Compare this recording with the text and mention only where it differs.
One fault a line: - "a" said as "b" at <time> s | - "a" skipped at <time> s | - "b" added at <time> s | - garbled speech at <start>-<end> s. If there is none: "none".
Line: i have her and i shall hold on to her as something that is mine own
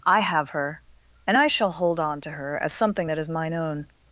none